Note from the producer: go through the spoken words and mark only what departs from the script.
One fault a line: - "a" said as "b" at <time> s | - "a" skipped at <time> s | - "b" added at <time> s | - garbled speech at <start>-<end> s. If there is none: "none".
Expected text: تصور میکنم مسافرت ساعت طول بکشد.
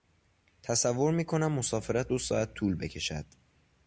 - "دو" added at 2.1 s